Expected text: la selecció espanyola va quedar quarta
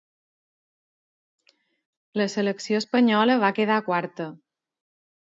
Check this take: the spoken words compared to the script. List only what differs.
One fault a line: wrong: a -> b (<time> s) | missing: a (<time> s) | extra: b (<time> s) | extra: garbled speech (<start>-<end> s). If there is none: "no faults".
no faults